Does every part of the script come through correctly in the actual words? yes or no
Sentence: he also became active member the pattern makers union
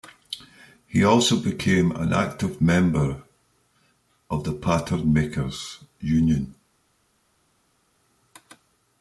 no